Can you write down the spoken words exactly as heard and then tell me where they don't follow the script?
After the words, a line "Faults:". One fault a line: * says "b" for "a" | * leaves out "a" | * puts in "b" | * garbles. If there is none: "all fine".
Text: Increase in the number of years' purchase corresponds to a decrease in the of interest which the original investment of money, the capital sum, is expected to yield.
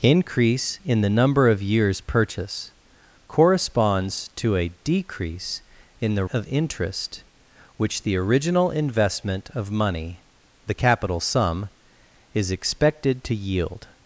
Increase in the number of years' purchase corresponds to a decrease in the of interest which the original investment of money, the capital sum, is expected to yield.
Faults:
all fine